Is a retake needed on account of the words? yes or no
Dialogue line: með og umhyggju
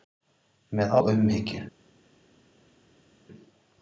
no